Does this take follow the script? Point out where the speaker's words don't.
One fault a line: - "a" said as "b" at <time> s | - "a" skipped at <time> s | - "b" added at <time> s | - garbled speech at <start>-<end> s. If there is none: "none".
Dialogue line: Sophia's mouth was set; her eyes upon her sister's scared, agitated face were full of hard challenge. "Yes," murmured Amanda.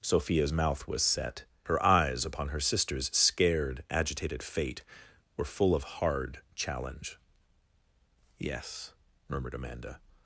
- "face" said as "fate" at 4.4 s